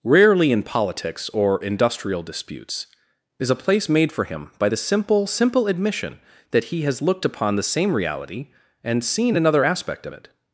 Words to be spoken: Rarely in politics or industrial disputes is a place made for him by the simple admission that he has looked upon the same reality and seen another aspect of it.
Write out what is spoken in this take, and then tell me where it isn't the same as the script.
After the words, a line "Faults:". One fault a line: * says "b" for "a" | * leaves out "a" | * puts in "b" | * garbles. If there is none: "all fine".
Rarely in politics or industrial disputes is a place made for him by the simple simple admission that he has looked upon the same reality and seen another aspect of it.
Faults:
* puts in "simple"